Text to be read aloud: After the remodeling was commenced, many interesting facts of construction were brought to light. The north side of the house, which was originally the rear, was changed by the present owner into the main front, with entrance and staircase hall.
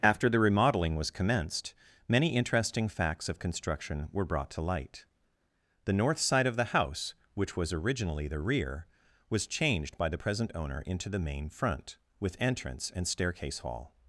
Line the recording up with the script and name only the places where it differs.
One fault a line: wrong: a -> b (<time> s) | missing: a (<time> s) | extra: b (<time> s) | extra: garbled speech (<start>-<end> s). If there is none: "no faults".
no faults